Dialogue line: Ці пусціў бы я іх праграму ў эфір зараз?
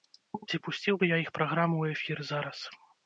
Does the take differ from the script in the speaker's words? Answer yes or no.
no